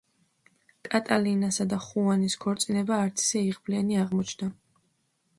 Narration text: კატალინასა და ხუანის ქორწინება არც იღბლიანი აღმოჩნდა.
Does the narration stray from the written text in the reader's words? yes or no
yes